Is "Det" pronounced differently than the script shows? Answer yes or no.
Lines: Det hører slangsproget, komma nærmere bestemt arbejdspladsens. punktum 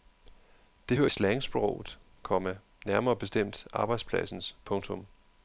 no